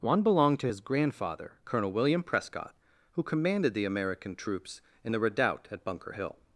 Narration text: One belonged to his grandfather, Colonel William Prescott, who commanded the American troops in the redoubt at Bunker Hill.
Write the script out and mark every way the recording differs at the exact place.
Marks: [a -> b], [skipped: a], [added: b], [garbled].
One belonged to his grandfather, Colonel William Prescott, who commanded the American troops in the redoubt at Bunker Hill.